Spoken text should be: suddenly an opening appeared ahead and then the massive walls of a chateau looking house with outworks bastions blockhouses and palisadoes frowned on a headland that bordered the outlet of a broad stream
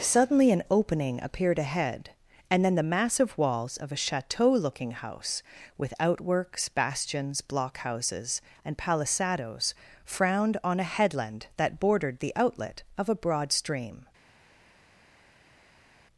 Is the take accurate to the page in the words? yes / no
yes